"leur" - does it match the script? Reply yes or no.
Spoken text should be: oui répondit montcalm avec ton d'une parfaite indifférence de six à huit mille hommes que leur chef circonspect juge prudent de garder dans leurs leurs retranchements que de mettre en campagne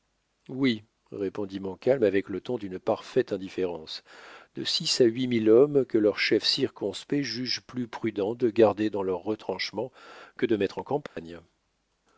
yes